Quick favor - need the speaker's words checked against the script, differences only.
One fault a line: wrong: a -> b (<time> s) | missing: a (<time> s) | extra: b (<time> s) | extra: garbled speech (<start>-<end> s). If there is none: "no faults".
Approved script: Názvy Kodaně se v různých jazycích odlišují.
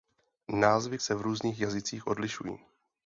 missing: Kodaně (1.0 s)